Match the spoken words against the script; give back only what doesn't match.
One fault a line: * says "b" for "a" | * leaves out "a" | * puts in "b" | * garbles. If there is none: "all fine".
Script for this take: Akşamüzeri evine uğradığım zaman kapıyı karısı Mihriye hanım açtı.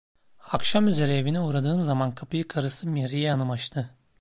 all fine